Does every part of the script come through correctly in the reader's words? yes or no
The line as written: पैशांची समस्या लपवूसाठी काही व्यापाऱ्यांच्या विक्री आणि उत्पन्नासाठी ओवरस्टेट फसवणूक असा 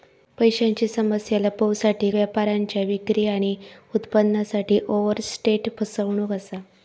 no